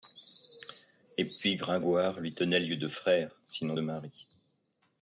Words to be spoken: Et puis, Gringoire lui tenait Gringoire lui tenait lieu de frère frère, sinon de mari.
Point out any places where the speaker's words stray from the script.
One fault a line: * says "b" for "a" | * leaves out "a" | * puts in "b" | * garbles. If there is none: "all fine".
* leaves out "Gringoire lui tenait"
* leaves out "frère"